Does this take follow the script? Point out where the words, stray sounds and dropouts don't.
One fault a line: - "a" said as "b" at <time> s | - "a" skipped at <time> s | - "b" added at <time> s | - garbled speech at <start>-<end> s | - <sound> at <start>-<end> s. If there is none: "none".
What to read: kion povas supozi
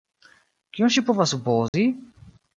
- "ŝi" added at 0.9 s
- dropout at 1.7-1.7 s